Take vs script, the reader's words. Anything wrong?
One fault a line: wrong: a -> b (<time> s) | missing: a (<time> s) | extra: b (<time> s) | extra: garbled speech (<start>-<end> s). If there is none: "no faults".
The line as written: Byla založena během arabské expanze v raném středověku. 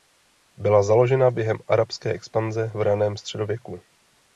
no faults